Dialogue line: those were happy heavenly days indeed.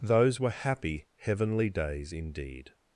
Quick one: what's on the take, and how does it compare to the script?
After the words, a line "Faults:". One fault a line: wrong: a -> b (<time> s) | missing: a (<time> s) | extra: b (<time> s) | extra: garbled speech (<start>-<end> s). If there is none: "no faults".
those were happy heavenly days indeed.
Faults:
no faults